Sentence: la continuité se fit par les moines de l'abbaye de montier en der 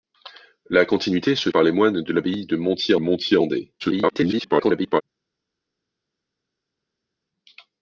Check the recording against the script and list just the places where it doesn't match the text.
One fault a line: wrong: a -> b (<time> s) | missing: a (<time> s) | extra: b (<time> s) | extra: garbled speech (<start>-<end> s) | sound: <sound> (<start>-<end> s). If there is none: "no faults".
missing: fit (1.5 s)
extra: montier (3.0 s)
extra: garbled speech (3.8-5.0 s)